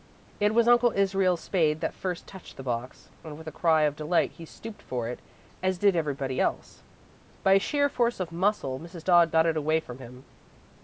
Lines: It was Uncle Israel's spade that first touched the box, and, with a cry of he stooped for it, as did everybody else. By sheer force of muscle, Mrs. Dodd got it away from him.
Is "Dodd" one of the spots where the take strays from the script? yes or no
no